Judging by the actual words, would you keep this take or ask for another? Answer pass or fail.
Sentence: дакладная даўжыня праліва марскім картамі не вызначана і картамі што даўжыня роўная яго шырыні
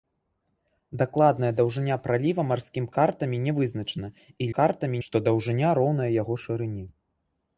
pass